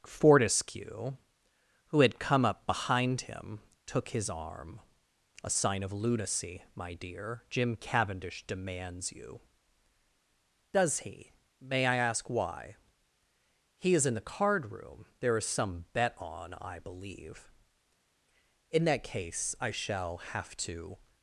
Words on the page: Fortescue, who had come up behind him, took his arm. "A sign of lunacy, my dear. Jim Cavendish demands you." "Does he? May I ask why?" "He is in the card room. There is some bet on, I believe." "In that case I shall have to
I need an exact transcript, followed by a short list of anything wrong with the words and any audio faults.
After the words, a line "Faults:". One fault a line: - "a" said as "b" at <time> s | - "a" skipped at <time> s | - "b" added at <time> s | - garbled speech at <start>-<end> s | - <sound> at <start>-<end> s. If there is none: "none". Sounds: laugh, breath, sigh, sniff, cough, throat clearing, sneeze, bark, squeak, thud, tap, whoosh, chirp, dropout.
Fortescue, who had come up behind him, took his arm. "A sign of lunacy, my dear. Jim Cavendish demands you." "Does he? May I ask why?" "He is in the card room. There is some bet on, I believe." "In that case I shall have to
Faults:
none